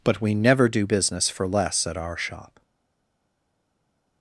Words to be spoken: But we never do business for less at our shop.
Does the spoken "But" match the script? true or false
true